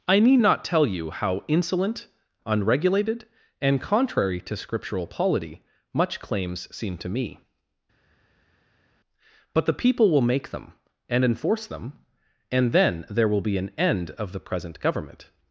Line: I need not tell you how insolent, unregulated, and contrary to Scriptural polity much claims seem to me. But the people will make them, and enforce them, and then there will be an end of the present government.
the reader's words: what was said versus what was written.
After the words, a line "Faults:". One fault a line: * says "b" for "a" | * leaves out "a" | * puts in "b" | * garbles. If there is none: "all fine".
I need not tell you how insolent, unregulated, and contrary to Scriptural polity much claims seem to me. But the people will make them, and enforce them, and then there will be an end of the present government.
Faults:
all fine